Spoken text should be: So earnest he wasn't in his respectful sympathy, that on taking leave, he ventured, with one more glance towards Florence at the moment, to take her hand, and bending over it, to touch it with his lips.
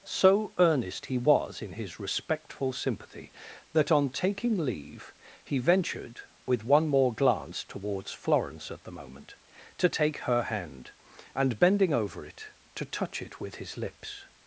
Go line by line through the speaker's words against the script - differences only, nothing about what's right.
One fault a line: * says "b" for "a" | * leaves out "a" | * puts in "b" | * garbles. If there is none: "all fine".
* says "was" for "wasn't"